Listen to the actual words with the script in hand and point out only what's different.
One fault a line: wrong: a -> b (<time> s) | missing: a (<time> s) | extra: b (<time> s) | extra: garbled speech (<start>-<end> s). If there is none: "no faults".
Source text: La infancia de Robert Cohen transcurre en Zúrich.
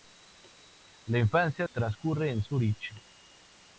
missing: de Robert Cohen (1.7 s)